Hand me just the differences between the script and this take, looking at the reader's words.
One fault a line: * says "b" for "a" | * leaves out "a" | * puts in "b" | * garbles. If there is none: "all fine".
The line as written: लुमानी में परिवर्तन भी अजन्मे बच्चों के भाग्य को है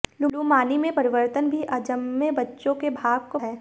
all fine